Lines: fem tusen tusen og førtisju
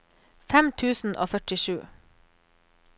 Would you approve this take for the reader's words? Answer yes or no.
no